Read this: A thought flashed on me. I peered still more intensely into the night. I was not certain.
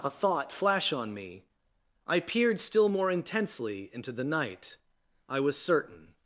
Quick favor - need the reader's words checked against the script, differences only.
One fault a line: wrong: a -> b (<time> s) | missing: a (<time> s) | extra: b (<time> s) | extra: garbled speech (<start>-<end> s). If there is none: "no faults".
wrong: flashed -> flash (0.5 s)
missing: not (5.6 s)